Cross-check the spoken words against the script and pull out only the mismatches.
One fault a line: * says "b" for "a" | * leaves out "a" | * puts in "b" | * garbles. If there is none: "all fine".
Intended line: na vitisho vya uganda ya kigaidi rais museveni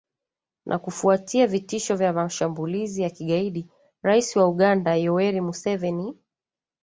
* puts in "kufuatia"
* says "mashambulizi" for "uganda"
* puts in "wa uganda yoweri"